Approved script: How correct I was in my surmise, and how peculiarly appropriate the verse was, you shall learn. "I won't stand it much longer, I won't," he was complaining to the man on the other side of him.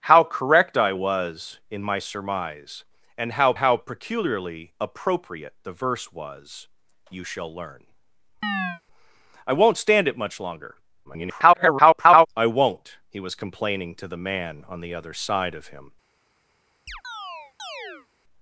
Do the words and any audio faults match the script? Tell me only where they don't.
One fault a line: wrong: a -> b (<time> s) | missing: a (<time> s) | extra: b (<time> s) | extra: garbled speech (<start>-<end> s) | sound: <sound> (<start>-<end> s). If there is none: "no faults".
extra: how (3.6 s)
sound: chirp (8.4-8.8 s)
extra: garbled speech (11.0-12.3 s)
sound: chirp (16.9-18.1 s)